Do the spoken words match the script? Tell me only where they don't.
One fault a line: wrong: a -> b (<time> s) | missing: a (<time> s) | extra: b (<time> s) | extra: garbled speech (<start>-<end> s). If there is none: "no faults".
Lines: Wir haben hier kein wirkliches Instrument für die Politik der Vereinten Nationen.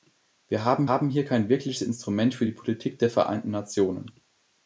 extra: haben (0.9 s)